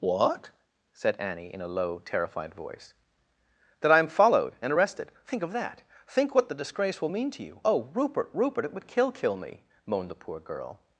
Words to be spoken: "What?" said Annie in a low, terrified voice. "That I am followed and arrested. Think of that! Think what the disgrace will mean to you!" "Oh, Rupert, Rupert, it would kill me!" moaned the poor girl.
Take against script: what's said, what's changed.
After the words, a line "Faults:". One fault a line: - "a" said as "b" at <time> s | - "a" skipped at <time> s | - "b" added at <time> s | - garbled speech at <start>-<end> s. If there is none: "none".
"What?" said Annie in a low, terrified voice. "That I am followed and arrested. Think of that! Think what the disgrace will mean to you!" "Oh, Rupert, Rupert, it would kill kill me!" moaned the poor girl.
Faults:
- "kill" added at 9.1 s